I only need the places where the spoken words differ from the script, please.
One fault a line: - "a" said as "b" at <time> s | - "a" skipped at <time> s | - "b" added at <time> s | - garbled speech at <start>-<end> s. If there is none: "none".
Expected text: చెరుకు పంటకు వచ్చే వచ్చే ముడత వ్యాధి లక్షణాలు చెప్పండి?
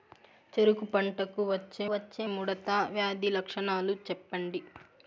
none